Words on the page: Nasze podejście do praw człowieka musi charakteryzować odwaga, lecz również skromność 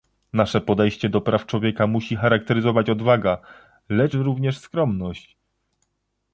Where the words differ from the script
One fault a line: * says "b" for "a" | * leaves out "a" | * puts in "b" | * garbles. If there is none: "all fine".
all fine